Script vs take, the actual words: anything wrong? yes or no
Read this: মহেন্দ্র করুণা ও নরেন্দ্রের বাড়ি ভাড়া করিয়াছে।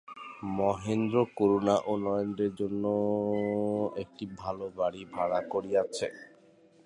yes